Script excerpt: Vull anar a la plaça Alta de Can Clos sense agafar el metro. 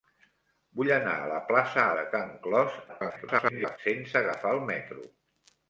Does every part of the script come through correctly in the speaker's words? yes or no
no